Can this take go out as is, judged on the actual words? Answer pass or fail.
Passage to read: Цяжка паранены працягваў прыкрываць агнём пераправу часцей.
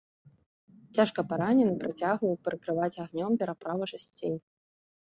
pass